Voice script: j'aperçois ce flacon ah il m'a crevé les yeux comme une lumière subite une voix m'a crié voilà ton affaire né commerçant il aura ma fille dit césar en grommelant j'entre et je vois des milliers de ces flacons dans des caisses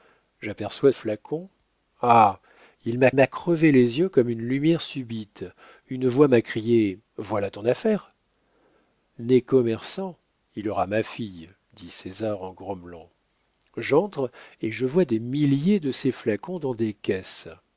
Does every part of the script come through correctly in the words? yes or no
no